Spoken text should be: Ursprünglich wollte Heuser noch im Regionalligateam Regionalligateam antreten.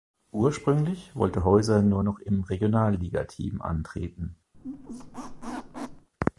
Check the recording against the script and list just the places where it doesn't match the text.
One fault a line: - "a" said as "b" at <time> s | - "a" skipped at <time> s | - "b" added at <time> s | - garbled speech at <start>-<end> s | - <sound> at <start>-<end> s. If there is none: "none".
- "nur" added at 1.8 s
- "Regionalligateam" skipped at 3.6 s
- squeak at 4.5-6.1 s